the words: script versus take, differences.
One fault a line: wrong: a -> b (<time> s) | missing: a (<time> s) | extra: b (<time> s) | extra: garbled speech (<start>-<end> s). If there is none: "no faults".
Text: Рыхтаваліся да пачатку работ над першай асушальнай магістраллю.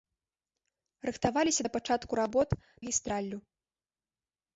missing: над першай асушальнай (2.5 s)